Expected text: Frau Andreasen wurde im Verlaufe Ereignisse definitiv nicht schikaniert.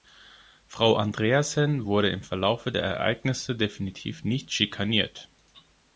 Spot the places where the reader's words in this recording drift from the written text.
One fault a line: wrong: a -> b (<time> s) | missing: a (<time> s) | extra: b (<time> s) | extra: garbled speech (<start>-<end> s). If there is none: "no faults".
extra: der (2.7 s)